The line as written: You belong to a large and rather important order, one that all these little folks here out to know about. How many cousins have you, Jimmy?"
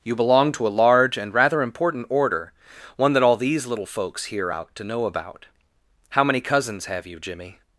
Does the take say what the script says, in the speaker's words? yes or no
yes